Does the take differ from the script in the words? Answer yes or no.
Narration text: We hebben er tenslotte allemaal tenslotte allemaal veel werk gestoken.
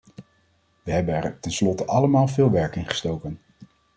yes